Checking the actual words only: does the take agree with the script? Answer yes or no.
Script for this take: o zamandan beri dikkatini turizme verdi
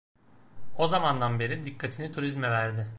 yes